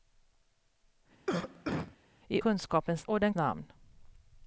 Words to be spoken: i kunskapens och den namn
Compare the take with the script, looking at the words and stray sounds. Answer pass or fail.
fail